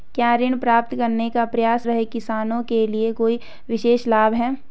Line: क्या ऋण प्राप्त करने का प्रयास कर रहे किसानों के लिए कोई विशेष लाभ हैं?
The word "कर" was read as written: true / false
false